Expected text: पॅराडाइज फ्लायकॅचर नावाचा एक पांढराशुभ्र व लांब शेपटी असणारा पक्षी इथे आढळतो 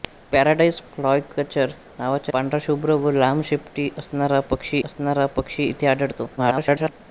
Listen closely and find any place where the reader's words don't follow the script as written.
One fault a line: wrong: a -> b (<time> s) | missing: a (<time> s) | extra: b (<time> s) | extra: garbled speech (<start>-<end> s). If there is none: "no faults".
missing: एक (2.3 s)
extra: असणारा पक्षी (4.8 s)
extra: garbled speech (6.4-6.9 s)